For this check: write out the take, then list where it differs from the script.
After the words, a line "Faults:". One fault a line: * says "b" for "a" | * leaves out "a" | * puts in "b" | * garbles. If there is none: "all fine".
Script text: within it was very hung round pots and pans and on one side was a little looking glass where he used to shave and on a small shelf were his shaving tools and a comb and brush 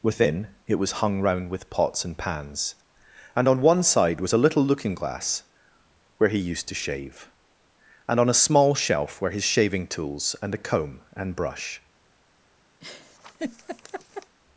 within it was hung round with pots and pans and on one side was a little looking glass where he used to shave and on a small shelf were his shaving tools and a comb and brush
Faults:
* leaves out "very"
* puts in "with"